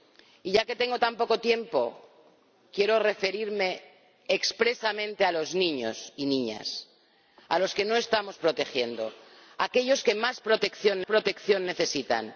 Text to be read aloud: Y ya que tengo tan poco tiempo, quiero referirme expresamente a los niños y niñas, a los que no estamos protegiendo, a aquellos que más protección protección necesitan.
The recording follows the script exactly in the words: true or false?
true